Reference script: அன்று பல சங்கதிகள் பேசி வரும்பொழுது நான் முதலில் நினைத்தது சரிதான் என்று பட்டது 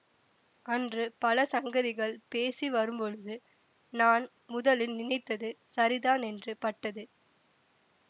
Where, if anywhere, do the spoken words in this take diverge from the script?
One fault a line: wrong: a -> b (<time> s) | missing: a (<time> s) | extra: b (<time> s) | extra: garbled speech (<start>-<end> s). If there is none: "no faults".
no faults